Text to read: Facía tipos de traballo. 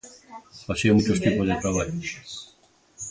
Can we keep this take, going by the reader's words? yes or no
no